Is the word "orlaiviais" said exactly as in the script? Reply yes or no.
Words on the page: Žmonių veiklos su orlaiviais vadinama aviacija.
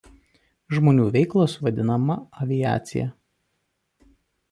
no